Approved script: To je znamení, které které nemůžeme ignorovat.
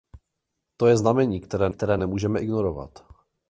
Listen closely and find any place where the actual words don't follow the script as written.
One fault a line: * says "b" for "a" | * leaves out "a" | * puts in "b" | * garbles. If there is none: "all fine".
all fine